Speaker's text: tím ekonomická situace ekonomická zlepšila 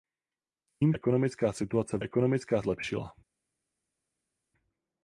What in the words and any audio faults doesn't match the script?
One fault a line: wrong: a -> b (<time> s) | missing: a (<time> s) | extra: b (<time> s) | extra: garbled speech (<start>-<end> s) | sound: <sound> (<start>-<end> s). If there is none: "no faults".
no faults